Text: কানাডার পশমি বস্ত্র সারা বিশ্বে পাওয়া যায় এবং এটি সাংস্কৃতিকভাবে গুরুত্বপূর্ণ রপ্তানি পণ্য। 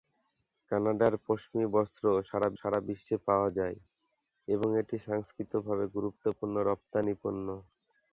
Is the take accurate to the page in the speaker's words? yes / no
no